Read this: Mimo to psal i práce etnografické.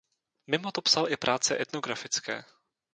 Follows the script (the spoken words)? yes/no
yes